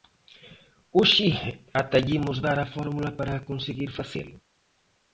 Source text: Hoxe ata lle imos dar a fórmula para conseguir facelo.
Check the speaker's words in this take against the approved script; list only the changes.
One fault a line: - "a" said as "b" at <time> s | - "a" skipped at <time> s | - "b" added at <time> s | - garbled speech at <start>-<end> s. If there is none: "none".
none